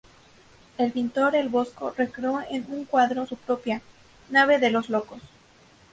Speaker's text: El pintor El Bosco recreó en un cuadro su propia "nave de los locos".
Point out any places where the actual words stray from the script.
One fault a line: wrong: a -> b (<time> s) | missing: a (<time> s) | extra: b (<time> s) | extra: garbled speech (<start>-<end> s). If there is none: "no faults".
no faults